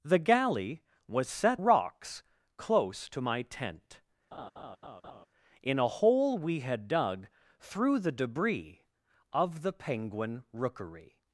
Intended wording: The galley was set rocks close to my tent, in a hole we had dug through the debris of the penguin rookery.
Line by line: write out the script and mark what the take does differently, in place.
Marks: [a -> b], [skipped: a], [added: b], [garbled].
The galley was set rocks close to my tent, in a hole we had dug through the debris of the penguin rookery.